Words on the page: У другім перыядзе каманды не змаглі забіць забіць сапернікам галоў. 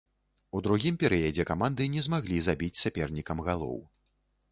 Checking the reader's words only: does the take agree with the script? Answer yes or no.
no